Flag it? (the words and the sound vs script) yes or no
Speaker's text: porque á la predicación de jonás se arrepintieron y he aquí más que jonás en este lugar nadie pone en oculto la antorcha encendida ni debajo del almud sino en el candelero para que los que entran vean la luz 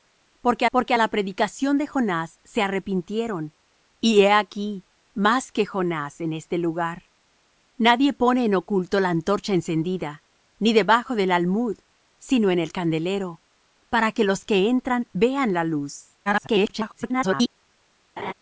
yes